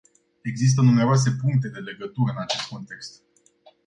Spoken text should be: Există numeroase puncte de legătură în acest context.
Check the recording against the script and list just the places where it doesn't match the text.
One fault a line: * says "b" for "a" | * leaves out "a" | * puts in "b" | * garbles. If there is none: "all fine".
all fine